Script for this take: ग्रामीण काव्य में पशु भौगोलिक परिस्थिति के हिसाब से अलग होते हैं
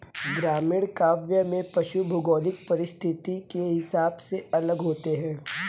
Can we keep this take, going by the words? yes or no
yes